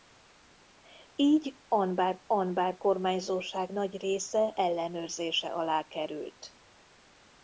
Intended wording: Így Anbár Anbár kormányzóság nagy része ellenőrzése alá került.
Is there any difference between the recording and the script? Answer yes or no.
no